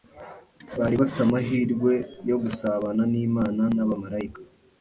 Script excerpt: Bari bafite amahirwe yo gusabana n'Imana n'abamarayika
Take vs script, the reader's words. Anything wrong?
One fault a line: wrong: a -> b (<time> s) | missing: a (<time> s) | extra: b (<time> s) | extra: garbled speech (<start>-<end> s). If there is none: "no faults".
no faults